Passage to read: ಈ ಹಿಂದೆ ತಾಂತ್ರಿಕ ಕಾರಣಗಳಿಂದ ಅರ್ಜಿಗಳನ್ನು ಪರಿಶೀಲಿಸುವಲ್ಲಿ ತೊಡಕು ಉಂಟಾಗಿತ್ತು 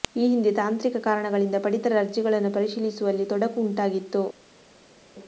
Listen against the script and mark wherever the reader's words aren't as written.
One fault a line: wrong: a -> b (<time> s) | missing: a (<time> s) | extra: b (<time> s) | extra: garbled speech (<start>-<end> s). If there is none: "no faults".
extra: ಪಡಿತರ (1.6 s)